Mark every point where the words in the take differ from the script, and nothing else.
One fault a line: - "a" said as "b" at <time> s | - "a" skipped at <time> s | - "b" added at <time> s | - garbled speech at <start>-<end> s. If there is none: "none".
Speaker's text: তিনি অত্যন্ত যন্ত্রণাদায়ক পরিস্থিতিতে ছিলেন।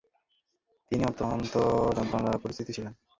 none